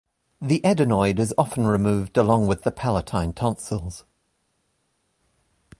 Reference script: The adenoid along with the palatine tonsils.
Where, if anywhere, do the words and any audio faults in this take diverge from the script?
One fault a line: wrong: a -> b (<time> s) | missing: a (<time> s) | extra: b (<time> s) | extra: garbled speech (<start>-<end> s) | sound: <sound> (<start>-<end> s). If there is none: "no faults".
extra: is often removed (1.2 s)